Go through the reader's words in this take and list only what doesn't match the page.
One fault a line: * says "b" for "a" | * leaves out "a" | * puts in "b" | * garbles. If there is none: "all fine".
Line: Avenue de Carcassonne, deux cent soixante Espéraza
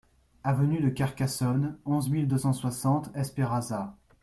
* puts in "onze mille"